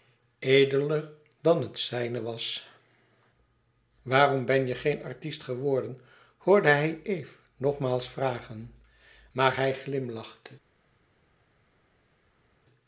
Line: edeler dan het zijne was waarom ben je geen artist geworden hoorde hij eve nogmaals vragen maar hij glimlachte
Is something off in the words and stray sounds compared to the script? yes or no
no